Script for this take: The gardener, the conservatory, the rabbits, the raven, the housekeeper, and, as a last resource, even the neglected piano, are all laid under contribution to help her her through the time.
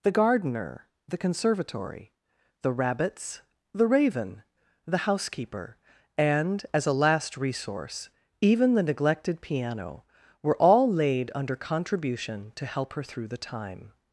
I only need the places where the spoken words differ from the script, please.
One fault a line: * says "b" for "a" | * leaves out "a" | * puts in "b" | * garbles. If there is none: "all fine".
* says "were" for "are"
* leaves out "her"